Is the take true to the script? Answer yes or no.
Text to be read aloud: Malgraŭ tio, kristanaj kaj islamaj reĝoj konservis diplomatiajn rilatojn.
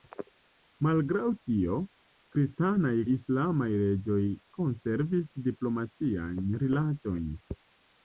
no